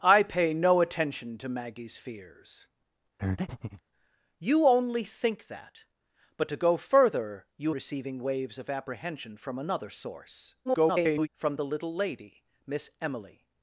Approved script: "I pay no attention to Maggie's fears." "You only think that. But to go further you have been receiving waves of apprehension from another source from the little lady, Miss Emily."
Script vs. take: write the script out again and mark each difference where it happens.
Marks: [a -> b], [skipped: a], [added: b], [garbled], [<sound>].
"I pay no attention to Maggie's fears." [breath] "You only think that. But to go further you [skipped: have been] receiving waves of apprehension from another source [garbled] from the little lady, Miss Emily."